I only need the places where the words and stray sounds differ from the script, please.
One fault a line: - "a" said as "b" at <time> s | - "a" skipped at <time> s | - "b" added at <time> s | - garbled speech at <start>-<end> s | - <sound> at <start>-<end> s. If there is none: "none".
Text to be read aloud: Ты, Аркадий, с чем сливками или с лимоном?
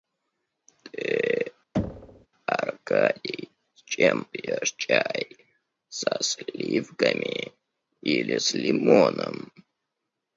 - thud at 1.7-2.3 s
- "пьешь чай со" added at 4.3 s